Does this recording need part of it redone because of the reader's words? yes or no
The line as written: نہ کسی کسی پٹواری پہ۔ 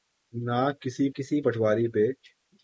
no